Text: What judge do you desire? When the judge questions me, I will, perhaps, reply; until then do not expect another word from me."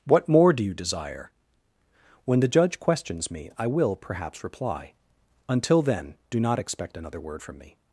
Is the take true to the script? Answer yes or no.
no